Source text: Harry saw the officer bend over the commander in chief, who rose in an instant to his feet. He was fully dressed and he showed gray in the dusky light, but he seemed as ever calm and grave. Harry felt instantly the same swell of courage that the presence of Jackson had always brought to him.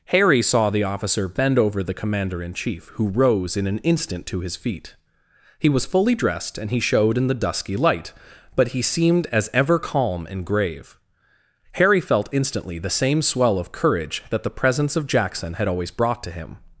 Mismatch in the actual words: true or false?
true